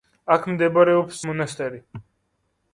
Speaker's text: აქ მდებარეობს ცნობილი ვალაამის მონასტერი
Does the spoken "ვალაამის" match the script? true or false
false